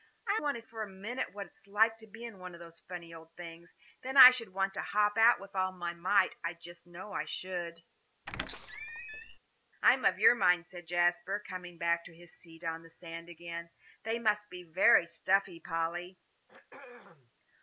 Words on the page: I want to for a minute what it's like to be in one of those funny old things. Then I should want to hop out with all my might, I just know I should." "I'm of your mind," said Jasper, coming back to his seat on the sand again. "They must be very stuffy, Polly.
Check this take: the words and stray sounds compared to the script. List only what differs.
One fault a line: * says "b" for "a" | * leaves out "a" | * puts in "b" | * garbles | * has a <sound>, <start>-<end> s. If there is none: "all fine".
* has a squeak, 8.3-9.4 s
* has a throat clearing, 16.5-17.3 s